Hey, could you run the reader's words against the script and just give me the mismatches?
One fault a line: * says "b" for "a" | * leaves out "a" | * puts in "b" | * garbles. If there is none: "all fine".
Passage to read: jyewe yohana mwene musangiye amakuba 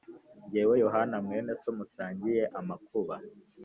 * puts in "so"